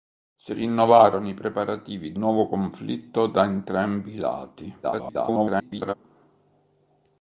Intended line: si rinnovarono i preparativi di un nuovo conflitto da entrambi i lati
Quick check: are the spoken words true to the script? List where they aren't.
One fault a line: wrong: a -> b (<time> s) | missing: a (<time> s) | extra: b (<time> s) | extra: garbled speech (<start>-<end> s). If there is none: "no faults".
missing: un (2.2 s)
extra: garbled speech (4.8-5.9 s)